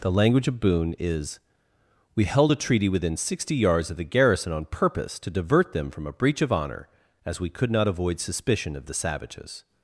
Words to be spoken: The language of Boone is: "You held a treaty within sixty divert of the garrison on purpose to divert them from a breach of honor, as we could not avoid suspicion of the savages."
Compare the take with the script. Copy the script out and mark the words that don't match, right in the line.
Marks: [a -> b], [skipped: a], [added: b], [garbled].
The language of Boone is: ["You -> We] held a treaty within sixty [divert -> yards] of the garrison on purpose to divert them from a breach of honor, as we could not avoid suspicion of the savages."